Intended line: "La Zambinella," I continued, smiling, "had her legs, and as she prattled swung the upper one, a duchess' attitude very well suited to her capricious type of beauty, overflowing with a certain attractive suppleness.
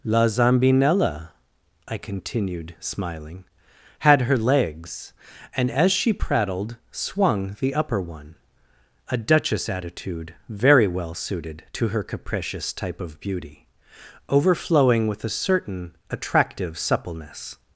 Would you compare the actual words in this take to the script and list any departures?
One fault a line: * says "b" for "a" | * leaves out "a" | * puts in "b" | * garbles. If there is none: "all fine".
all fine